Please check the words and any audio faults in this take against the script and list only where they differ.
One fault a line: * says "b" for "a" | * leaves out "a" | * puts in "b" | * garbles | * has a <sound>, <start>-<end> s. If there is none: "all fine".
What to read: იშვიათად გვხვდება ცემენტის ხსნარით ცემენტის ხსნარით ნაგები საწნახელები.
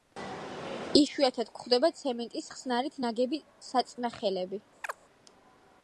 * leaves out "ცემენტის ხსნარით"
* has a chirp, 4.8-5.0 s